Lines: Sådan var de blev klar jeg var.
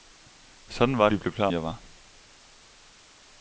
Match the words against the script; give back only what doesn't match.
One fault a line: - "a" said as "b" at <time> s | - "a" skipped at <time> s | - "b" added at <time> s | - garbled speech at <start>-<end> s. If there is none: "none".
none